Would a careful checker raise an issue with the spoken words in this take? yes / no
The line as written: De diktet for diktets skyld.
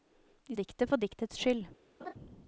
no